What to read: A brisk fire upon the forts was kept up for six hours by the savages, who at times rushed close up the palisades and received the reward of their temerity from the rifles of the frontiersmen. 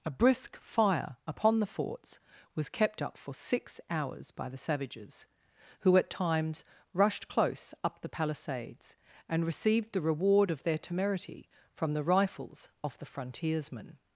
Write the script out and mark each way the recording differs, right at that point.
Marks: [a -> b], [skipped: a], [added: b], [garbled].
A brisk fire upon the forts was kept up for six hours by the savages, who at times rushed close up the palisades and received the reward of their temerity from the rifles of the frontiersmen.